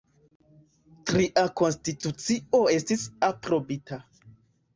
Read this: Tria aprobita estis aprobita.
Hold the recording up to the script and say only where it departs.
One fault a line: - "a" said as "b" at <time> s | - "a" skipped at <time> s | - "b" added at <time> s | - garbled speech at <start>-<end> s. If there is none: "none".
- "aprobita" said as "konstitucio" at 1.6 s